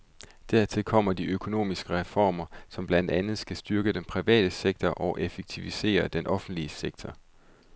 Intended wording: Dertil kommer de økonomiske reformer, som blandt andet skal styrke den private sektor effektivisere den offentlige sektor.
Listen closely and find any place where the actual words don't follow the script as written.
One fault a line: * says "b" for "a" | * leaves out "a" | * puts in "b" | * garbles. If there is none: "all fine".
* puts in "og"